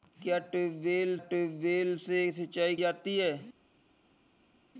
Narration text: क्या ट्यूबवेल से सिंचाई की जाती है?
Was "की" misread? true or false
true